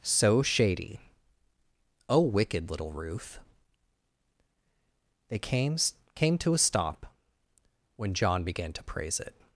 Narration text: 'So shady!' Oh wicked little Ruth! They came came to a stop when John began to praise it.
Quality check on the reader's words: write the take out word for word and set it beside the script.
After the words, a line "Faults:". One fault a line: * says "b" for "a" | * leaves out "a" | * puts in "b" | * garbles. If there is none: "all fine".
'So shady!' Oh wicked little Ruth! They came came to a stop when John began to praise it.
Faults:
all fine